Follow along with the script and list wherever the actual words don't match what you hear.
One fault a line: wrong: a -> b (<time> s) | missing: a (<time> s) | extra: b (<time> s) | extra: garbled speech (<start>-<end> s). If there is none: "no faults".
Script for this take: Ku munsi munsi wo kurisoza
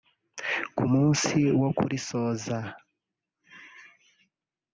missing: munsi (1.4 s)